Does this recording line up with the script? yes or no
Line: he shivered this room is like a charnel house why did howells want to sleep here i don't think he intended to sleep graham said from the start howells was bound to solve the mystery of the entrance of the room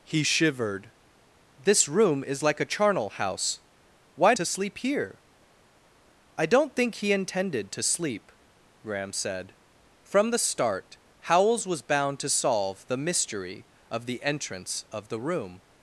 no